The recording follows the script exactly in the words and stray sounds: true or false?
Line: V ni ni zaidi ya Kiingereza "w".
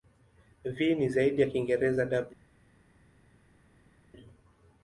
false